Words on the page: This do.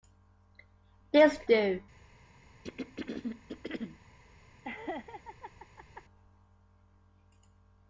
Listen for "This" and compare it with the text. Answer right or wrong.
right